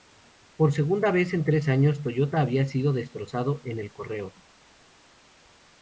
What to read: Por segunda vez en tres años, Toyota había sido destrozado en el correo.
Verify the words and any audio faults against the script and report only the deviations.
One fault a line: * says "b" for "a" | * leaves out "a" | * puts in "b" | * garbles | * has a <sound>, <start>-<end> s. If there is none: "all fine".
all fine